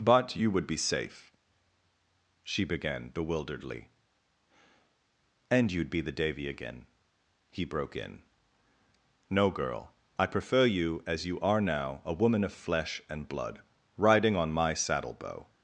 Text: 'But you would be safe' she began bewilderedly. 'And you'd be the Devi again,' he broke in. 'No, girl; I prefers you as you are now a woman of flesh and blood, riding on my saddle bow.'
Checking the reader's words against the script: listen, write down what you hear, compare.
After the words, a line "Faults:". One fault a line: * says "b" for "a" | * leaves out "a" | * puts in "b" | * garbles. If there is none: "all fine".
'But you would be safe' she began bewilderedly. 'And you'd be the Devi again,' he broke in. 'No, girl; I prefer you as you are now a woman of flesh and blood, riding on my saddle bow.'
Faults:
* says "prefer" for "prefers"